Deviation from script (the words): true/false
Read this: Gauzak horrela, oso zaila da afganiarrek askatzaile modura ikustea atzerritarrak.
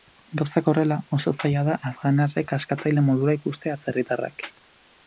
false